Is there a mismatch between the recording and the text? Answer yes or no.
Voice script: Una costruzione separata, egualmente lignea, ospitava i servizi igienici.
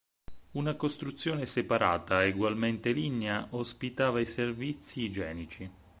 no